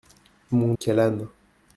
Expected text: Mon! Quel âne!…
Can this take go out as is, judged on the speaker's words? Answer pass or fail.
pass